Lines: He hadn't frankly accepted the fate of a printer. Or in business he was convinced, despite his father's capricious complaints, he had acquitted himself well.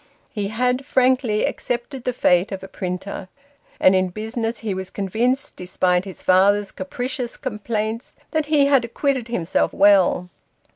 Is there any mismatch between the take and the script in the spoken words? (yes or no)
yes